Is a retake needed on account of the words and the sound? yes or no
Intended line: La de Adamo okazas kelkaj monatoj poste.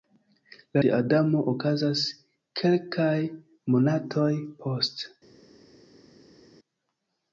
no